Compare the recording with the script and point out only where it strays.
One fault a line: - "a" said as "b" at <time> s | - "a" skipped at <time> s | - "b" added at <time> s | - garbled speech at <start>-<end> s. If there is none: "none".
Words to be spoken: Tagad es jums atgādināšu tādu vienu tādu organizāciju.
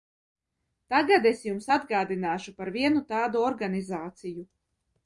- "tādu" said as "par" at 2.6 s